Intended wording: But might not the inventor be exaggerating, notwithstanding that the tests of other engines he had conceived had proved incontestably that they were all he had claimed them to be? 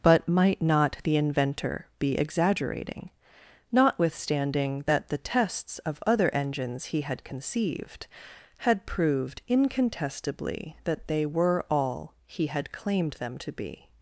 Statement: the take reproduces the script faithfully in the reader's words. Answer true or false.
true